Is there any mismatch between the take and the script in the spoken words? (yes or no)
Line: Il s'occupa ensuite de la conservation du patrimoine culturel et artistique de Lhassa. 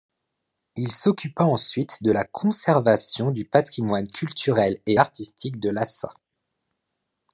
no